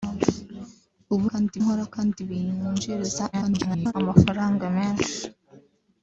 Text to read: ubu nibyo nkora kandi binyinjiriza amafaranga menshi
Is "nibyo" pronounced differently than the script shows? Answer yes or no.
yes